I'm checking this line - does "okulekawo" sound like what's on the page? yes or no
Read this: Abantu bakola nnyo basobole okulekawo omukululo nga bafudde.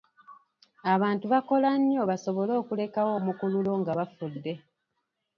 yes